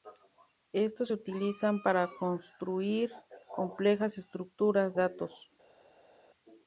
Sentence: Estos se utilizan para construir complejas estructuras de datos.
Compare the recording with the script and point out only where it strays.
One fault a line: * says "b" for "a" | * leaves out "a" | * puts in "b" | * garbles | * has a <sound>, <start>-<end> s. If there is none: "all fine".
* leaves out "de"